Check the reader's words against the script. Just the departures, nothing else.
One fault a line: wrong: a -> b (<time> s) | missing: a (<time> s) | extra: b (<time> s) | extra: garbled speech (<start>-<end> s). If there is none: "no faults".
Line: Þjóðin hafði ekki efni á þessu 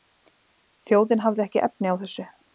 no faults